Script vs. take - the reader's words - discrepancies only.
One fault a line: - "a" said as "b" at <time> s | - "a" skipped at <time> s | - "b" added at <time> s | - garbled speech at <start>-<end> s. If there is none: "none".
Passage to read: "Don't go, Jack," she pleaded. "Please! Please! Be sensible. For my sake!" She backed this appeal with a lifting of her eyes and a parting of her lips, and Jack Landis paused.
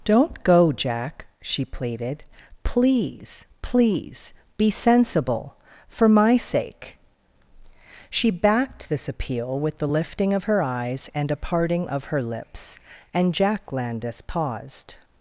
- "a" said as "the" at 9.8 s